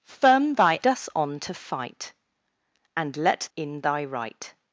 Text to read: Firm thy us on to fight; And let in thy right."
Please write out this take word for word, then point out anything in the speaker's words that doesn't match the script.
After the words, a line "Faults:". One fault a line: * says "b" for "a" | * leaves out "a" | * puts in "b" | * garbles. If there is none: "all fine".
Firm thy us on to fight; And let in thy right."
Faults:
all fine